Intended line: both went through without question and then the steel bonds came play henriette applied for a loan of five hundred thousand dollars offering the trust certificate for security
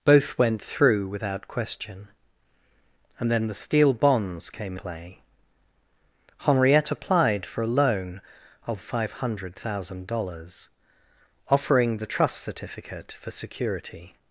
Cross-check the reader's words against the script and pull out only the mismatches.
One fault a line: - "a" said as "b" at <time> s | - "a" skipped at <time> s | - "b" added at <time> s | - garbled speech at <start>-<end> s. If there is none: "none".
none